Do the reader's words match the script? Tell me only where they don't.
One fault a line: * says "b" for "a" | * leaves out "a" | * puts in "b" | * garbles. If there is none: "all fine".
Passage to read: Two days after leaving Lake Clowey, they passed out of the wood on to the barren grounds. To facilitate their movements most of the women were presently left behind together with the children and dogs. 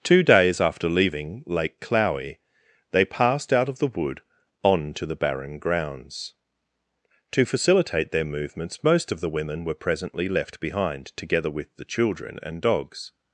all fine